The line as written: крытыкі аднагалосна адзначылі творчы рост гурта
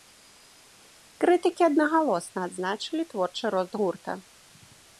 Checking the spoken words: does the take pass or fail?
pass